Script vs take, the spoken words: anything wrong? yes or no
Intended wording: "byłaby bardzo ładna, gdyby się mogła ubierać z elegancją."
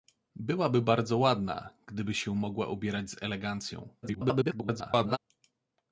yes